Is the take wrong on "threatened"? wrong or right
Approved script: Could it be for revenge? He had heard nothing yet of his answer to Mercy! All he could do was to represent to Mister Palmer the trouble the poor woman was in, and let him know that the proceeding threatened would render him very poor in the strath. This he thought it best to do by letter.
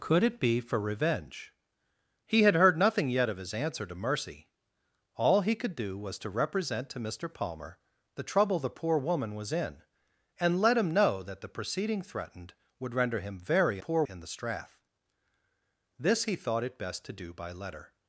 right